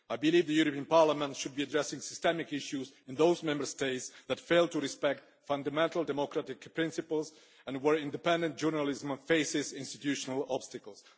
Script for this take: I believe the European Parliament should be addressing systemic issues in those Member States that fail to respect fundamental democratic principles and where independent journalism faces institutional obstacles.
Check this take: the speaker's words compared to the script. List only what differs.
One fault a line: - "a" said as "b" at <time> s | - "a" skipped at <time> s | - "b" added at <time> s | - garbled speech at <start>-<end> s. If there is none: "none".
none